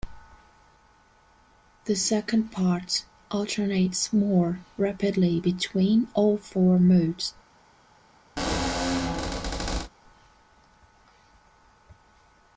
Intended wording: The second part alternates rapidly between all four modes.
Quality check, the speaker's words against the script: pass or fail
fail